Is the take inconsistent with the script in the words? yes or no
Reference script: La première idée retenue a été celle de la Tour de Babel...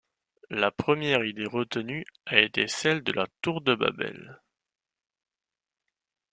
no